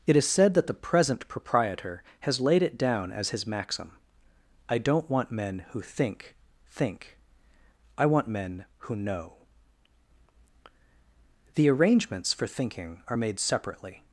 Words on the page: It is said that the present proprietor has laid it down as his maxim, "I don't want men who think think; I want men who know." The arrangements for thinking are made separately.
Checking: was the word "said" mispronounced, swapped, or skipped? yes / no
no